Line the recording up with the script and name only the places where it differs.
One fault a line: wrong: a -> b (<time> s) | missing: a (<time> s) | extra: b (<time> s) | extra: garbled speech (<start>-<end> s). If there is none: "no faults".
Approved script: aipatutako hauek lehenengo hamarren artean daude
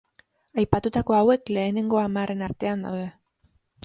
no faults